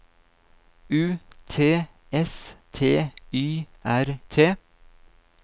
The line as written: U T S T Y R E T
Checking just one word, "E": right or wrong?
wrong